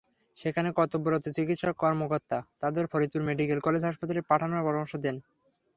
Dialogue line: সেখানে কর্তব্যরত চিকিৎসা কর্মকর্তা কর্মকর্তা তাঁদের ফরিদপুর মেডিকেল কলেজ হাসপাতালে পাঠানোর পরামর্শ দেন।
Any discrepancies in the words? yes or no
yes